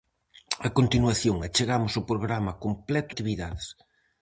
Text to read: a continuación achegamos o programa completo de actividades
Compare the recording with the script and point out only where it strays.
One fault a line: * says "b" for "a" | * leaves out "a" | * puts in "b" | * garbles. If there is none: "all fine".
* leaves out "de"